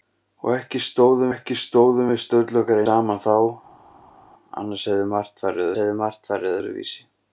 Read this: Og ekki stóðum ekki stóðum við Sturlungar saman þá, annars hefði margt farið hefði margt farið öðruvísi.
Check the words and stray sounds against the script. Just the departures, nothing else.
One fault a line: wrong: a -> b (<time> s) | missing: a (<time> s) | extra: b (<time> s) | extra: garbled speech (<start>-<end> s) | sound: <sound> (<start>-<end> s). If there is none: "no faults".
no faults